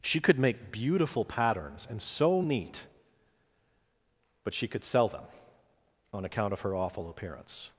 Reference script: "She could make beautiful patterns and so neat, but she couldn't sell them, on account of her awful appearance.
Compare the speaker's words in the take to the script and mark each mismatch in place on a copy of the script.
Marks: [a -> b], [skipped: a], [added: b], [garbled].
"She could make beautiful patterns and so neat, but she [couldn't -> could] sell them, on account of her awful appearance.